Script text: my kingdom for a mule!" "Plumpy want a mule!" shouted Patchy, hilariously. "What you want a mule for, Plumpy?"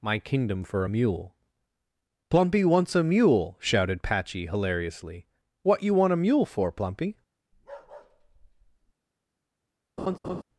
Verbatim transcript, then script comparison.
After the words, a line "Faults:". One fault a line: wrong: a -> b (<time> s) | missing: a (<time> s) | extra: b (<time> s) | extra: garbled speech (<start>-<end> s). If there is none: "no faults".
my kingdom for a mule!" "Plumpy wants a mule!" shouted Patchy, hilariously. "What you want a mule for, Plumpy?"
Faults:
wrong: want -> wants (2.6 s)